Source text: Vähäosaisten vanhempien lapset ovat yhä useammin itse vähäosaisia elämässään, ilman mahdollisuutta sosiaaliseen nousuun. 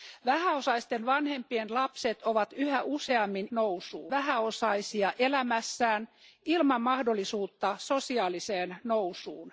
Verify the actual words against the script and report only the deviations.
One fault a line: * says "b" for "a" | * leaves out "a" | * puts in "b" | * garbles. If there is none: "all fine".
* says "nousuun" for "itse"